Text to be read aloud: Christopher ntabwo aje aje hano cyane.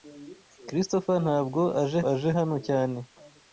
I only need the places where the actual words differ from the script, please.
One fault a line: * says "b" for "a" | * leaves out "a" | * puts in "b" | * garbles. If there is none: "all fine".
all fine